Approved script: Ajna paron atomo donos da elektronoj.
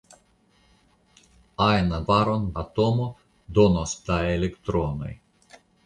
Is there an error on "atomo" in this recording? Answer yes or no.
no